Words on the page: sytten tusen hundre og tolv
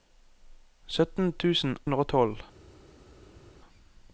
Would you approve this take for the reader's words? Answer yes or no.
yes